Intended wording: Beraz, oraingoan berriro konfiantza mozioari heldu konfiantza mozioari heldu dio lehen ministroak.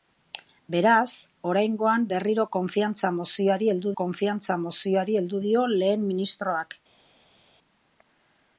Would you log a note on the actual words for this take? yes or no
no